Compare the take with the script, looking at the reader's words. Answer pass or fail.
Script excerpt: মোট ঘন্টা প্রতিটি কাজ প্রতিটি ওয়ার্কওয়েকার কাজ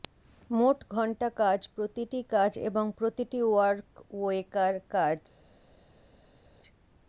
fail